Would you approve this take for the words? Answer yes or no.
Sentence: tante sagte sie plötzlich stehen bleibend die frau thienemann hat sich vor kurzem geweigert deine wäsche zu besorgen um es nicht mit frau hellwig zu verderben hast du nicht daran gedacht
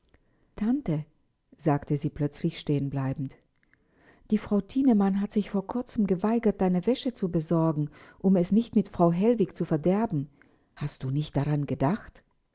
yes